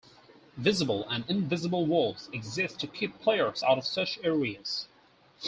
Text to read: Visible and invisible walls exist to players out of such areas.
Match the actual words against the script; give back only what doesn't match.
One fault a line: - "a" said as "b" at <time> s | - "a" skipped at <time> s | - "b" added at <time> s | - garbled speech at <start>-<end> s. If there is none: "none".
- "keep" added at 2.8 s